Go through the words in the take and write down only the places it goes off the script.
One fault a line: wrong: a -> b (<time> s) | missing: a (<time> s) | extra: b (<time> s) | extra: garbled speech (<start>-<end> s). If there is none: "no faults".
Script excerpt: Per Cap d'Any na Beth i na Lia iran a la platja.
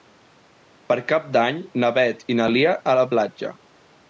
missing: iran (2.7 s)